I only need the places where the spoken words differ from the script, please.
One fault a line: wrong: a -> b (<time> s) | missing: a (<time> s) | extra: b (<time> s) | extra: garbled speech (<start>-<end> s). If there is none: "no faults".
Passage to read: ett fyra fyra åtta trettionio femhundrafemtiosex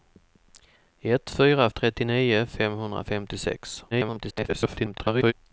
missing: fyra åtta (1.7 s)
extra: garbled speech (3.9-5.3 s)